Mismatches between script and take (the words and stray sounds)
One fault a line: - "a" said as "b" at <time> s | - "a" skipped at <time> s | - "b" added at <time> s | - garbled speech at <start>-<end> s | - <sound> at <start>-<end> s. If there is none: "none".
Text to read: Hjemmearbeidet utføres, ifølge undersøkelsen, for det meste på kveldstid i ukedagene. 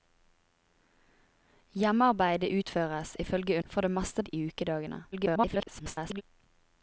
- "undersøkelsen" skipped at 3.6 s
- "på kveldstid" skipped at 4.2 s
- garbled speech at 5.1-6.2 s